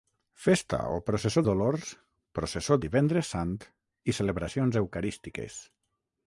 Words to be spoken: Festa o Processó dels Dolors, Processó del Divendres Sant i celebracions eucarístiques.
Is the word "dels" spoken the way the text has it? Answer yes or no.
no